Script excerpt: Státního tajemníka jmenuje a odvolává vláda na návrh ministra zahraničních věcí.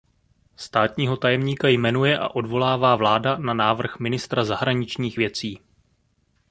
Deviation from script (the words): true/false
false